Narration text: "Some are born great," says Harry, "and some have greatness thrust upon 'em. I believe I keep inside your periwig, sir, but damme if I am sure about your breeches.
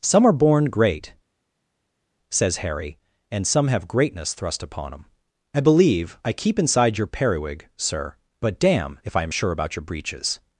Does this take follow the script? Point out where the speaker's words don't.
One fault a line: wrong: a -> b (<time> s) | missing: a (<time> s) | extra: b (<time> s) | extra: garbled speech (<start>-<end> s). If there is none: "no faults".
no faults